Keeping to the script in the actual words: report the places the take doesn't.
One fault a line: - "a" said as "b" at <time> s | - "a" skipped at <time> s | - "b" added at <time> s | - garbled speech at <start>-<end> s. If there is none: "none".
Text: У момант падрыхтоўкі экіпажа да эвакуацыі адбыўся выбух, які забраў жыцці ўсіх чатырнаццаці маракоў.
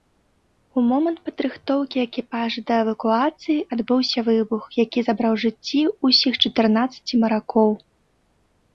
none